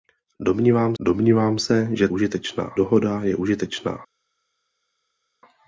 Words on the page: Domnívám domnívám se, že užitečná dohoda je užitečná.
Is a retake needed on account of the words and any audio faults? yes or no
no